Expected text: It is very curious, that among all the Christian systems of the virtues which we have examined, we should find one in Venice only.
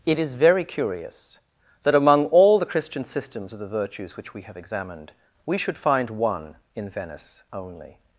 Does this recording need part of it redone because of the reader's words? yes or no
no